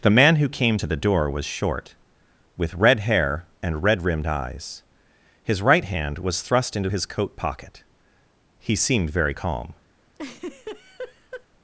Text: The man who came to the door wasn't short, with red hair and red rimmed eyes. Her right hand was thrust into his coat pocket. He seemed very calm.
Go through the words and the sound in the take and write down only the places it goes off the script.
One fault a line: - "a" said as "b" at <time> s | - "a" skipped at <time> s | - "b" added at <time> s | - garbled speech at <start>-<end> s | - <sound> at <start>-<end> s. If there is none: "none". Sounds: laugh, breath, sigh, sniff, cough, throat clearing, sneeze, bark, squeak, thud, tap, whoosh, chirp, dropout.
- "wasn't" said as "was" at 1.3 s
- "Her" said as "His" at 5.4 s
- laugh at 10.1-11.5 s